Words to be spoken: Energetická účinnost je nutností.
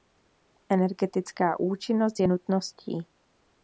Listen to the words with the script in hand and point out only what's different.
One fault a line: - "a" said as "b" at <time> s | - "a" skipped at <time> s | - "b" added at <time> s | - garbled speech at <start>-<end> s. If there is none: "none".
none